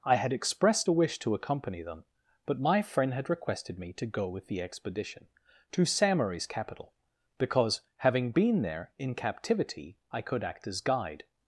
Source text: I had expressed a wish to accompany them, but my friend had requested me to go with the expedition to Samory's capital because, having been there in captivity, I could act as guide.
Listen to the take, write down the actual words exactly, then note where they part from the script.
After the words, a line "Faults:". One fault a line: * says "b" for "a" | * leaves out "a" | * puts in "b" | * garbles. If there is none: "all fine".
I had expressed a wish to accompany them, but my friend had requested me to go with the expedition to Samory's capital because, having been there in captivity, I could act as guide.
Faults:
all fine